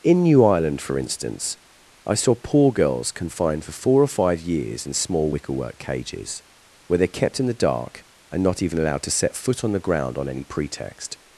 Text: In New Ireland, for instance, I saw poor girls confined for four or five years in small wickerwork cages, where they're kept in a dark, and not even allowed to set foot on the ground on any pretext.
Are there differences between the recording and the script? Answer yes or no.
yes